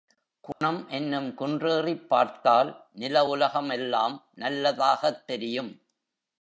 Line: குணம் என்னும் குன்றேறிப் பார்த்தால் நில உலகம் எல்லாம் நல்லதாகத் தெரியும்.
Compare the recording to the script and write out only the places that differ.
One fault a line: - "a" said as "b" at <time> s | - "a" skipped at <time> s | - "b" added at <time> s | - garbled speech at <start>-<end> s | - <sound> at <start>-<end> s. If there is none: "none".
- dropout at 0.5-0.6 s